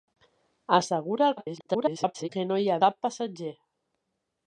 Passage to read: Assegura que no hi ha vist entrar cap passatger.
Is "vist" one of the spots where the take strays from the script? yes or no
yes